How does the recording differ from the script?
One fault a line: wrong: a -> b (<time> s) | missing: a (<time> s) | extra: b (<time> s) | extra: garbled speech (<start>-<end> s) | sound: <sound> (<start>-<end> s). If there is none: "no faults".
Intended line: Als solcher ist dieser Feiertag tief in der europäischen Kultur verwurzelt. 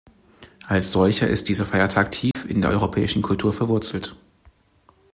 sound: dropout (2.3-2.3 s)